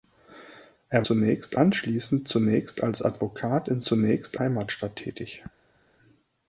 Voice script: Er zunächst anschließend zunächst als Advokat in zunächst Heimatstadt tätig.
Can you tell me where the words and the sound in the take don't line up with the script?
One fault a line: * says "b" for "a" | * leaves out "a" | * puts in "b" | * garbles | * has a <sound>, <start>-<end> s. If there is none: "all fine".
all fine